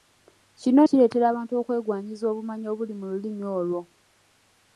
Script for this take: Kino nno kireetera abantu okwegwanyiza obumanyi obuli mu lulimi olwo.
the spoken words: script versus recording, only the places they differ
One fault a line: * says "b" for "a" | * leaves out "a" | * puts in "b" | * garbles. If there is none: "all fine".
* leaves out "nno"